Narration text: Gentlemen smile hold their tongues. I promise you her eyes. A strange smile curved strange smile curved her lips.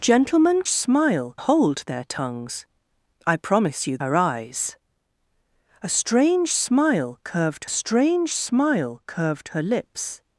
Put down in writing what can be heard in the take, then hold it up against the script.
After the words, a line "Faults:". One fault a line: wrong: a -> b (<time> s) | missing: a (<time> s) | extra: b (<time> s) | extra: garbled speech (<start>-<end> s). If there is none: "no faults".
Gentlemen smile hold their tongues. I promise you her eyes. A strange smile curved strange smile curved her lips.
Faults:
no faults